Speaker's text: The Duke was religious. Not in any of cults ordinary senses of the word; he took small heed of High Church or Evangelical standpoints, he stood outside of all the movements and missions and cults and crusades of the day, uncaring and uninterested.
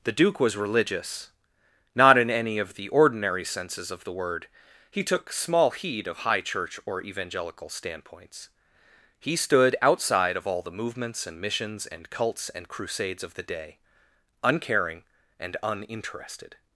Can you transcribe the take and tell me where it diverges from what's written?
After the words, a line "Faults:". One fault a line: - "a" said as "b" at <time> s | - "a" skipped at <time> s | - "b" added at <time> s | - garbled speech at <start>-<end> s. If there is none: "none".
The Duke was religious. Not in any of the ordinary senses of the word; he took small heed of High Church or Evangelical standpoints, he stood outside of all the movements and missions and cults and crusades of the day, uncaring and uninterested.
Faults:
- "cults" said as "the" at 2.7 s